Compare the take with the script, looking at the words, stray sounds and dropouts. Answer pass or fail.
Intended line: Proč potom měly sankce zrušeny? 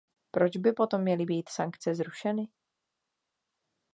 fail